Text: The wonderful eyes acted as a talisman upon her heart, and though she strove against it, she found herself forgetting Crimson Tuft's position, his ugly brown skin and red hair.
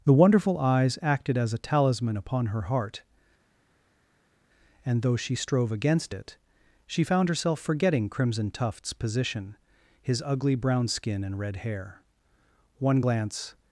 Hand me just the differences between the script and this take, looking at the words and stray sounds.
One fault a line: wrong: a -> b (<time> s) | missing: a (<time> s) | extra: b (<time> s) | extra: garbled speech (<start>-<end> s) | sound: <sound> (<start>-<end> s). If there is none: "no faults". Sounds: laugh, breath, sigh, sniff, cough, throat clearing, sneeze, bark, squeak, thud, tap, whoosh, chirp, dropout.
extra: One glance (12.8 s)